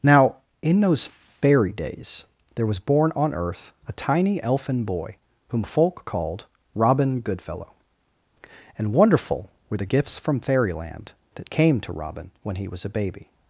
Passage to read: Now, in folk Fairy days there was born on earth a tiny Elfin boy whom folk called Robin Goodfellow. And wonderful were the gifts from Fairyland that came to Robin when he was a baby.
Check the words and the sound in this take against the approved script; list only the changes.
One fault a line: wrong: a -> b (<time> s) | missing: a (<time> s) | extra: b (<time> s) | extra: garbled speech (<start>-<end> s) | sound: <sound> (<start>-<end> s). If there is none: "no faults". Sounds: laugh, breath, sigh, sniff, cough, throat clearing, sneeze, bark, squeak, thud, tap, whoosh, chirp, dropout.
wrong: folk -> those (0.8 s)